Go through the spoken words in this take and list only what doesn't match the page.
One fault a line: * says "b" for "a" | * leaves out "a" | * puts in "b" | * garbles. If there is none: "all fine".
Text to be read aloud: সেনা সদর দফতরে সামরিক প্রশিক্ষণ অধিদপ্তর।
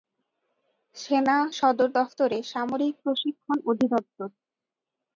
all fine